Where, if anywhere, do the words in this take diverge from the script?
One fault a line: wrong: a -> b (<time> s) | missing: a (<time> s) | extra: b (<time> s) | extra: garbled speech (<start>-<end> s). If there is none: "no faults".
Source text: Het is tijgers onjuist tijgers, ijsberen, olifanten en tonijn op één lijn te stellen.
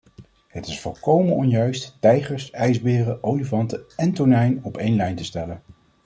wrong: tijgers -> volkomen (0.8 s)